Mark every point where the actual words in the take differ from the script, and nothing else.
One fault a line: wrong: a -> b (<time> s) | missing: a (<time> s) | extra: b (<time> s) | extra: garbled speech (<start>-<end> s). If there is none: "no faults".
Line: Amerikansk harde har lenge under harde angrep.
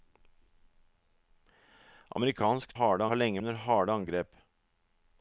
no faults